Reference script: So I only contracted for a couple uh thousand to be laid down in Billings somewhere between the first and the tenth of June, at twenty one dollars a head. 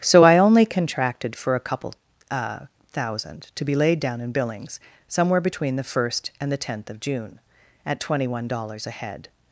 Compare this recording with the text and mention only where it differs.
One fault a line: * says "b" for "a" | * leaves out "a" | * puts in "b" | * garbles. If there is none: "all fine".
all fine